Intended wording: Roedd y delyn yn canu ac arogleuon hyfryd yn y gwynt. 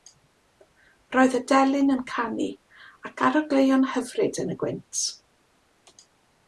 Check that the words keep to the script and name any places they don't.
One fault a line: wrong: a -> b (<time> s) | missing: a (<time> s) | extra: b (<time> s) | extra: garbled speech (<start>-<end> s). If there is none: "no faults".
no faults